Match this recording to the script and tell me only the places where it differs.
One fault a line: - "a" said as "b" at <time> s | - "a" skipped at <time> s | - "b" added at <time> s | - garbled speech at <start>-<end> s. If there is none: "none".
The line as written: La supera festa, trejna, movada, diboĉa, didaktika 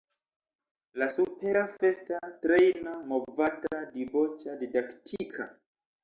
none